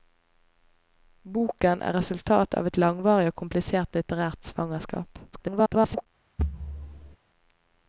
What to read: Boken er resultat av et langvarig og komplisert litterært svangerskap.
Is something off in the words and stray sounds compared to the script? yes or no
yes